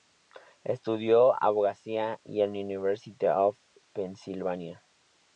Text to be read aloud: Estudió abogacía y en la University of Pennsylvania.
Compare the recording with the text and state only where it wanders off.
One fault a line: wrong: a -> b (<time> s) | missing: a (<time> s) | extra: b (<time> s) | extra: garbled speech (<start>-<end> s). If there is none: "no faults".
no faults